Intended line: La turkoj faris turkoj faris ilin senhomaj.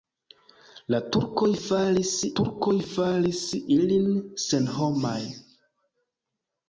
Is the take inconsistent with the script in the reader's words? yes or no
no